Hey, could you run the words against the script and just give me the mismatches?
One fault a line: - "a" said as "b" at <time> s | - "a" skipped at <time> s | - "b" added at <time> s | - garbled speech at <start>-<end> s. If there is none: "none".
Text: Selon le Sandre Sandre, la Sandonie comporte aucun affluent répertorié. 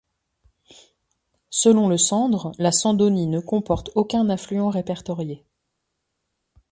- "Sandre" skipped at 2.5 s
- "ne" added at 3.3 s